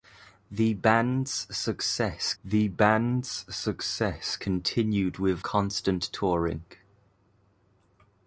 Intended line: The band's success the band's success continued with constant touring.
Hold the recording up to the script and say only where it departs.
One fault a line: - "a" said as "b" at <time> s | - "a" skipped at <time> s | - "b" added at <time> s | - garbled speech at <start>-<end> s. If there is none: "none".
none